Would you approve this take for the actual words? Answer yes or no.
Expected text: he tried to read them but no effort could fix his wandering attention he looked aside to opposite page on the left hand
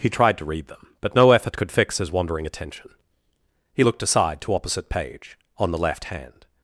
yes